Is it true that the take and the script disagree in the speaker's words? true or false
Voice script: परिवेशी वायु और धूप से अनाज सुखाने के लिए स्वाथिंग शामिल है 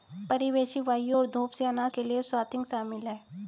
true